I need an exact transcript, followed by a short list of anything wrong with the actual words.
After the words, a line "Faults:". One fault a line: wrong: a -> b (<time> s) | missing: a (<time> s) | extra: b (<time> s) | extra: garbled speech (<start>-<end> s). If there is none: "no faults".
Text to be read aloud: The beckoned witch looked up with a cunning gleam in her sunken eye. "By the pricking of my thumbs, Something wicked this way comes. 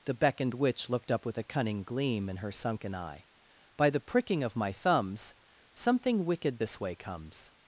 The beckoned witch looked up with a cunning gleam in her sunken eye. "By the pricking of my thumbs, Something wicked this way comes.
Faults:
no faults